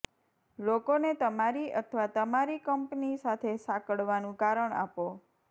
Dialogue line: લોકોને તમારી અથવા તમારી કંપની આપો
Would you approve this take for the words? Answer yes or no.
no